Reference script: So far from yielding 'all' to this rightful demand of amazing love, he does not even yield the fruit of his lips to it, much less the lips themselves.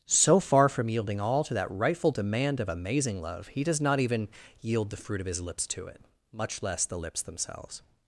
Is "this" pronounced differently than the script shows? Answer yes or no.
yes